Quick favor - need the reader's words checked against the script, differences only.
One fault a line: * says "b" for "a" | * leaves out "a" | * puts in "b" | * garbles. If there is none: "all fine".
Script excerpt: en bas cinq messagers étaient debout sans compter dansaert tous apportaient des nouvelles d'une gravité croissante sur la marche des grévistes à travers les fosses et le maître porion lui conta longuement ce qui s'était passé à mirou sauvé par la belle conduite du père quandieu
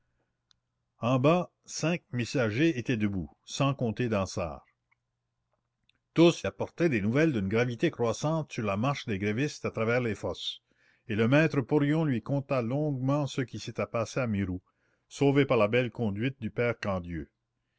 all fine